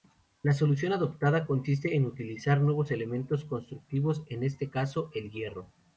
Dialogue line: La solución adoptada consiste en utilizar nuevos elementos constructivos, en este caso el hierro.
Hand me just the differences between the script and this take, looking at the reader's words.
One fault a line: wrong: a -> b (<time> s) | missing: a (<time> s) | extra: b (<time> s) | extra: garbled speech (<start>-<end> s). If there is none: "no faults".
no faults